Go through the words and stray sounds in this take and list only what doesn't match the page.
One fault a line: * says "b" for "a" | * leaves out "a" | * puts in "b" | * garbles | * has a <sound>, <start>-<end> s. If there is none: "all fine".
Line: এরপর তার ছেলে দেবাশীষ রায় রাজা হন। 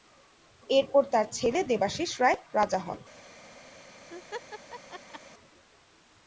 * has a laugh, 4.1-5.2 s